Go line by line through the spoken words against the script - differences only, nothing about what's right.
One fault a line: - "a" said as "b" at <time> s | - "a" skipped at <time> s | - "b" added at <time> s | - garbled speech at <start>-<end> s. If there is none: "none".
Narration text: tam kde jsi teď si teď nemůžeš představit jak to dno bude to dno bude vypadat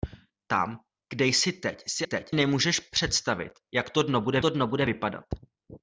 none